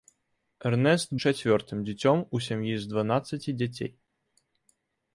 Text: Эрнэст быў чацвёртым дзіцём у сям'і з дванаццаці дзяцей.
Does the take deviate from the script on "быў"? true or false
true